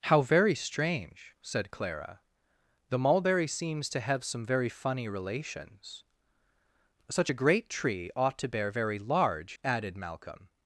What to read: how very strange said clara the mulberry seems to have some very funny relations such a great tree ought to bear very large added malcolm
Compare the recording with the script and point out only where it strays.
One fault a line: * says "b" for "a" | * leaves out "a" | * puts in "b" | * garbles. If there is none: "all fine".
all fine